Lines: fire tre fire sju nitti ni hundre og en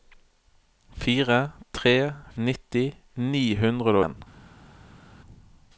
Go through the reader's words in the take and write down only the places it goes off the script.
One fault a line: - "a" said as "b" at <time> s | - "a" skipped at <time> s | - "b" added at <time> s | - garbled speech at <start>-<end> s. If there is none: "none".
- "fire sju" skipped at 1.9 s
- "og" skipped at 4.0 s